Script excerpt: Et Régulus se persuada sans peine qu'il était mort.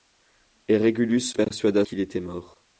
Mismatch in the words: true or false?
true